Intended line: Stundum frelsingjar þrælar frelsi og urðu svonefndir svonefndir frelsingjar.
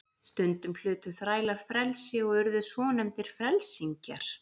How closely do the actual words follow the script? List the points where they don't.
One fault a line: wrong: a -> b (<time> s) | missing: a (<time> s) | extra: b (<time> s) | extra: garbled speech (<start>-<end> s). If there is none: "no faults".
wrong: frelsingjar -> hlutu (0.8 s)
missing: svonefndir (3.4 s)